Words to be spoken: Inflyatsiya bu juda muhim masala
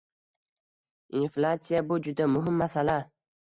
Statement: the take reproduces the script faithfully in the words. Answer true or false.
true